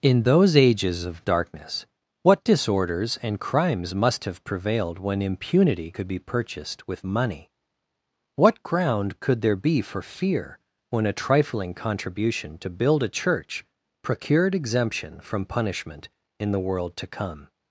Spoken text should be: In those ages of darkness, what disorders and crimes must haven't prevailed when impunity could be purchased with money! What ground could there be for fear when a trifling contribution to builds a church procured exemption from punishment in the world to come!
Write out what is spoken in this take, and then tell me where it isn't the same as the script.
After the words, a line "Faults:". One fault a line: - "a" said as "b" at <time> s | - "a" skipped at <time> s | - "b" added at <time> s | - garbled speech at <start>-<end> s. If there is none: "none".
In those ages of darkness, what disorders and crimes must have prevailed when impunity could be purchased with money! What ground could there be for fear when a trifling contribution to build a church procured exemption from punishment in the world to come!
Faults:
- "haven't" said as "have" at 4.2 s
- "builds" said as "build" at 12.7 s